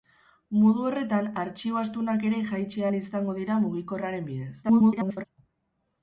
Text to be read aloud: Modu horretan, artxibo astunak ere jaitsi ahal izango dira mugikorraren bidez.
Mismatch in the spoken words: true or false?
true